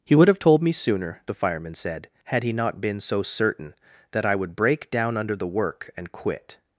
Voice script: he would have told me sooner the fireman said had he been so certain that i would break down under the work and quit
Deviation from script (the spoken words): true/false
true